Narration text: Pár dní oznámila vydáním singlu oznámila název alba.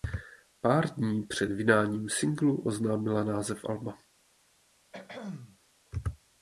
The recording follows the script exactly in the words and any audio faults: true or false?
false